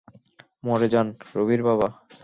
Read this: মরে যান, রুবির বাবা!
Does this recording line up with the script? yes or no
yes